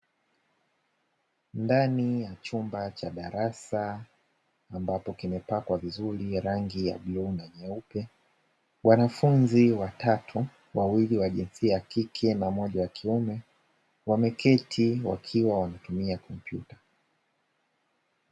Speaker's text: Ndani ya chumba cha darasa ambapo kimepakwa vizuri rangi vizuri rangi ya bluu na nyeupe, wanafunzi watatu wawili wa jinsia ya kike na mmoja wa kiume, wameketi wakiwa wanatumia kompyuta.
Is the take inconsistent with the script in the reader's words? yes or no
yes